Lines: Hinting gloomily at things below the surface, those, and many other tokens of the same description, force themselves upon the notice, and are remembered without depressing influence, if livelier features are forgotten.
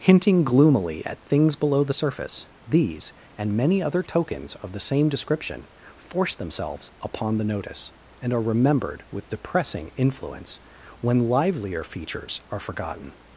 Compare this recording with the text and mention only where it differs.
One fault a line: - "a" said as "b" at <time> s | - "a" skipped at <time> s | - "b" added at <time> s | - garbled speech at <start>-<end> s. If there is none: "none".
- "those" said as "these" at 2.7 s
- "without" said as "with" at 9.1 s
- "if" said as "when" at 11.0 s